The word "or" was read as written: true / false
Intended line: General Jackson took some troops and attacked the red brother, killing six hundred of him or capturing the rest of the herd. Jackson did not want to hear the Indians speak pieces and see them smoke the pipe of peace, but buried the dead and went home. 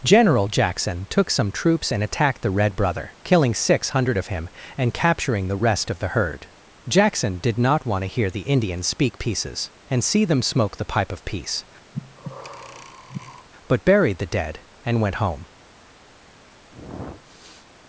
false